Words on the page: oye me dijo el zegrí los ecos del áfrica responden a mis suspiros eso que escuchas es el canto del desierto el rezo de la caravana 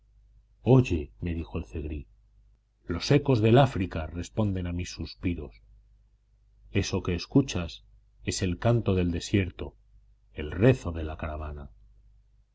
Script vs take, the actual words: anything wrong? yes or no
no